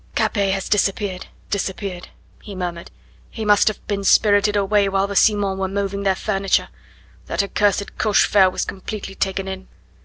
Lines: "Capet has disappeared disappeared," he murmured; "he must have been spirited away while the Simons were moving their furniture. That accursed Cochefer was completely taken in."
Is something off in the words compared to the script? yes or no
no